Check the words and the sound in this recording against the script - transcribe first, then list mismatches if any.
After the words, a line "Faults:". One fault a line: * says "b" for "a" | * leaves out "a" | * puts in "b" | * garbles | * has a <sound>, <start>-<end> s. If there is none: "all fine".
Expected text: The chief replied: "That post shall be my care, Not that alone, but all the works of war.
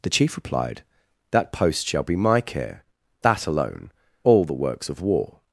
The chief replied: "That post shall be my care, That alone, all the works of war.
Faults:
* leaves out "Not"
* leaves out "but"